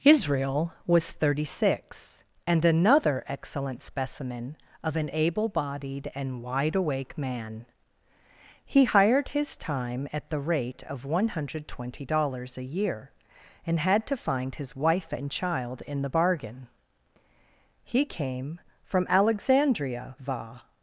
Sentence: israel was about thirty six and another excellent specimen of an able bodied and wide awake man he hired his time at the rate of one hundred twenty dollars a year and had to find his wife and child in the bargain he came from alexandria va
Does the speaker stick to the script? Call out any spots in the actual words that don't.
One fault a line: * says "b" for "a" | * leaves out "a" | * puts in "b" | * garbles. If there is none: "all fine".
* leaves out "about"